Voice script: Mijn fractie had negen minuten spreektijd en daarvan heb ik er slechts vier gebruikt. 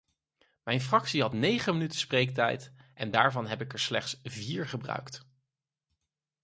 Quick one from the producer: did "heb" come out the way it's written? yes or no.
yes